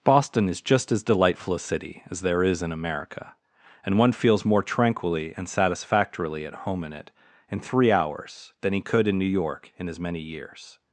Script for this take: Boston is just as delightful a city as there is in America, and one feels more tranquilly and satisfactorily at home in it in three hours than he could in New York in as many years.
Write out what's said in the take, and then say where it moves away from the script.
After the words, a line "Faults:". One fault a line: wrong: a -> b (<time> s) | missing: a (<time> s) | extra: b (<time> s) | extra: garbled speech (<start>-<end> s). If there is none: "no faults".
Boston is just as delightful a city as there is in America, and one feels more tranquilly and satisfactorily at home in it in three hours than he could in New York in as many years.
Faults:
no faults